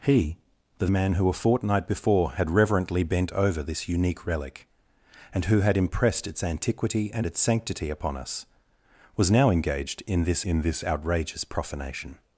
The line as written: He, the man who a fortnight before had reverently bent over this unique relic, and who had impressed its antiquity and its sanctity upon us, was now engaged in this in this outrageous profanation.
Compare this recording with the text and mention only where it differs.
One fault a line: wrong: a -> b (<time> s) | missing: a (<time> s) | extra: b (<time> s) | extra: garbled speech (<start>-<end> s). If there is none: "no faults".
no faults